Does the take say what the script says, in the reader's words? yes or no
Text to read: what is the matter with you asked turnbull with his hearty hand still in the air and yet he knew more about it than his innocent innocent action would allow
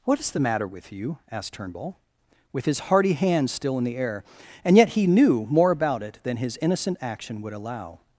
no